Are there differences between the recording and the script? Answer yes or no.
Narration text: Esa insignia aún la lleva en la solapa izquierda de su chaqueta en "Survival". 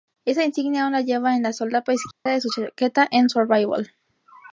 no